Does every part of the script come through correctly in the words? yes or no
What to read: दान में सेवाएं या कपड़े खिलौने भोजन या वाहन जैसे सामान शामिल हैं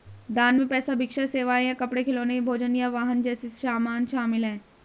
no